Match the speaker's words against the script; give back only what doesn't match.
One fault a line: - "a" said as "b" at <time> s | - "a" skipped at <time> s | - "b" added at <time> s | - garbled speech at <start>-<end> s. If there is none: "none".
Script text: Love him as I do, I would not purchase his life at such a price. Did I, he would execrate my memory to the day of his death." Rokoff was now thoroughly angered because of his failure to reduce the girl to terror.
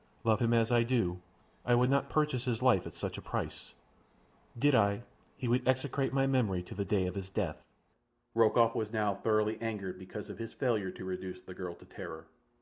none